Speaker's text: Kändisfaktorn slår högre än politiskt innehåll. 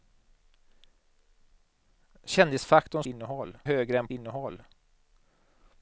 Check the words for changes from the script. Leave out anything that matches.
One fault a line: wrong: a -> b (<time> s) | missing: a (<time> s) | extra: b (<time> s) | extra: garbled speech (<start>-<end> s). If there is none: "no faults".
wrong: slår -> innehåll (3.1 s)
missing: politiskt (4.1 s)